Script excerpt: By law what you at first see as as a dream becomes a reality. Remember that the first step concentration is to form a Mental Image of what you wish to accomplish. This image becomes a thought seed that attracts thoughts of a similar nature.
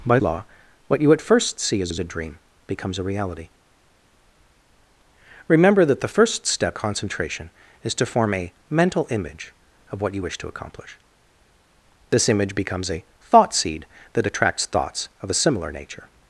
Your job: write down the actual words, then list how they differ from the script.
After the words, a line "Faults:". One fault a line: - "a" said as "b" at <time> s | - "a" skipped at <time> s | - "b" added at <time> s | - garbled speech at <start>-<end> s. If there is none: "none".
By law what you at first see as as a dream becomes a reality. Remember that the first step concentration is to form a Mental Image of what you wish to accomplish. This image becomes a thought seed that attracts thoughts of a similar nature.
Faults:
none